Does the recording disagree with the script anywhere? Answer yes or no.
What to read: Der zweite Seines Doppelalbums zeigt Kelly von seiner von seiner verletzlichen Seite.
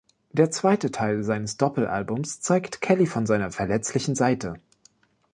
yes